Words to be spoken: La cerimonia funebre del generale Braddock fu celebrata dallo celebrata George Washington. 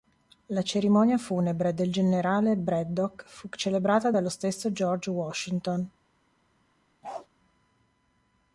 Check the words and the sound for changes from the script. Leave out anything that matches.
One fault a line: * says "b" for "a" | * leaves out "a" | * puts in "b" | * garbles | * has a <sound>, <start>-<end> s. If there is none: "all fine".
* says "stesso" for "celebrata"
* has a bark, 7.0-7.3 s